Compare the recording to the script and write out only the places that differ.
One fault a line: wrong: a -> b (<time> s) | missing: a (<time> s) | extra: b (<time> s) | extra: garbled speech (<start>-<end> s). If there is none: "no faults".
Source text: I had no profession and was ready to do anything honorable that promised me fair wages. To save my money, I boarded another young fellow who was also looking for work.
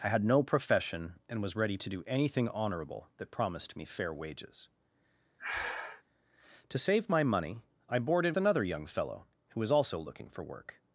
no faults